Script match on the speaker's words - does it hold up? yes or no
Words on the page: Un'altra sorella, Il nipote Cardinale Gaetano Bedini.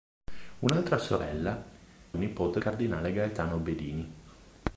yes